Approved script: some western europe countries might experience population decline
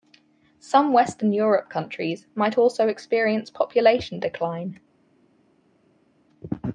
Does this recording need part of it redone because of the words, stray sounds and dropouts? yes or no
yes